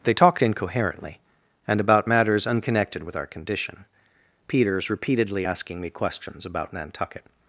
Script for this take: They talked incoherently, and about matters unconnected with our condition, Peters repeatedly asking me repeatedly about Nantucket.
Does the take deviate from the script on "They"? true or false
false